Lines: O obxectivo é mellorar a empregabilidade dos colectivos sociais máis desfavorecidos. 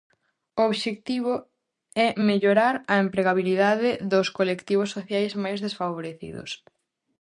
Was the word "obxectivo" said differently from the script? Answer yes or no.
no